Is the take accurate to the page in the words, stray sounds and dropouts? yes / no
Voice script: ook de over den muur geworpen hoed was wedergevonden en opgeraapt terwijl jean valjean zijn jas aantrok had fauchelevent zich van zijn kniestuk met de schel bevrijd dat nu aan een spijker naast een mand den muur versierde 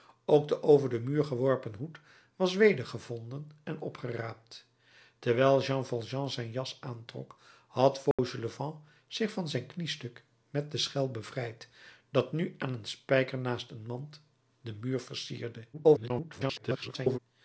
no